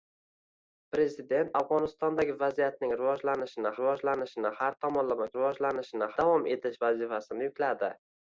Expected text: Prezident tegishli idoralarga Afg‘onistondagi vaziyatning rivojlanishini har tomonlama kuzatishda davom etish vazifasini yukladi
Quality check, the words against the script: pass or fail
fail